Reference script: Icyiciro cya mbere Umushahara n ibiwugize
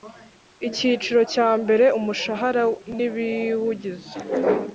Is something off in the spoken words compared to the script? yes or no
no